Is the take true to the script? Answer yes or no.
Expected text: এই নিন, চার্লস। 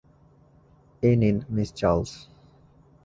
no